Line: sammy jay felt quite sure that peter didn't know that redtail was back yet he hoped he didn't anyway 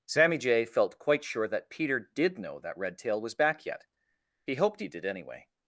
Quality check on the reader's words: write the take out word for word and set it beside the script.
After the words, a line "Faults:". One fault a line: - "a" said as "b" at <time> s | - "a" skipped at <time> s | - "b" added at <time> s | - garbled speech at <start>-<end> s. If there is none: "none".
sammy jay felt quite sure that peter did know that redtail was back yet he hoped he did anyway
Faults:
- "didn't" said as "did" at 2.0 s
- "didn't" said as "did" at 4.9 s